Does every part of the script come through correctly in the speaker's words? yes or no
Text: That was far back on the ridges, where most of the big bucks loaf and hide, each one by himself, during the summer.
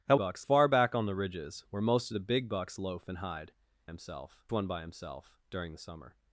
no